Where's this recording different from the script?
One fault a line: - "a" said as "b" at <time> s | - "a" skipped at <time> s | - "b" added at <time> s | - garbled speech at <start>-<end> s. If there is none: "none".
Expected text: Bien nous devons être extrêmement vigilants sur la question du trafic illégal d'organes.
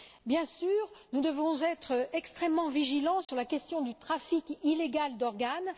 - "sûr" added at 0.5 s